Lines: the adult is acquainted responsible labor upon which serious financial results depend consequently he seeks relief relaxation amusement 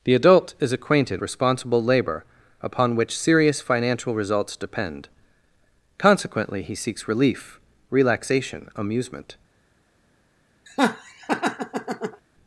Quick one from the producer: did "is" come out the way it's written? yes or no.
yes